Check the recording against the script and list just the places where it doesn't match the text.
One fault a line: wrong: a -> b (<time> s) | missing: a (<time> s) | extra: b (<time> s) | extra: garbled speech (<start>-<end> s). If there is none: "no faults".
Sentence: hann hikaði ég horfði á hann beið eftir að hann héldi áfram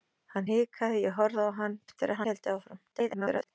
missing: beið (1.8 s)
missing: hann (2.2 s)
extra: garbled speech (2.9-3.5 s)